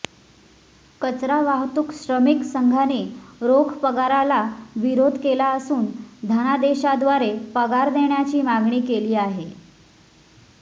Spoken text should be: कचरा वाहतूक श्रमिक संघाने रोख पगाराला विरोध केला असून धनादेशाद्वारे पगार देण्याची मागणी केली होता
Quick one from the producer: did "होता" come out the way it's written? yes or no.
no